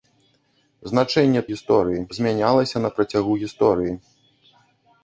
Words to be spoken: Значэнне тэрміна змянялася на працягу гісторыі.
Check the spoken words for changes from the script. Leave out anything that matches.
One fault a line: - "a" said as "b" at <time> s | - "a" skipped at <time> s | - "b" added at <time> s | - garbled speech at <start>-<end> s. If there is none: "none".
- "тэрміна" said as "гісторыі" at 1.5 s